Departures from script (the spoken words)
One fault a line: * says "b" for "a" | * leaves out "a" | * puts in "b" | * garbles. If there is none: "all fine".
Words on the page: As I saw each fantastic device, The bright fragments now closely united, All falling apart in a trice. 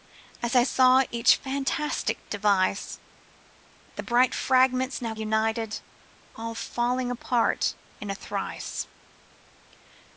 * leaves out "closely"